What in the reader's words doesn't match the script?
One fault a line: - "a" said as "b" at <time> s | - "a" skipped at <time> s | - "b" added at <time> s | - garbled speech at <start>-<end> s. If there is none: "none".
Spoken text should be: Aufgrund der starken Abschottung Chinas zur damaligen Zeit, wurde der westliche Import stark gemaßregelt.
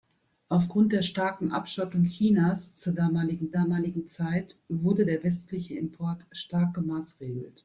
- "damaligen" added at 3.5 s